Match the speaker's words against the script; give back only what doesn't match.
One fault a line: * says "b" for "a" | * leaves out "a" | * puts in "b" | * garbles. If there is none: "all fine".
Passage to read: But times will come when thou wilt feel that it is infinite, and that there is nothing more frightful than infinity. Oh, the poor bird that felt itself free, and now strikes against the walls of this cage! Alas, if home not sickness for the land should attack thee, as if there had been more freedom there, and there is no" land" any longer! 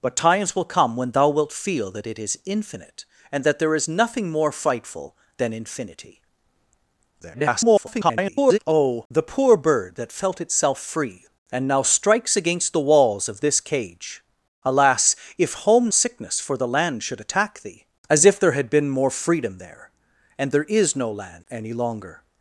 * garbles
* leaves out "not"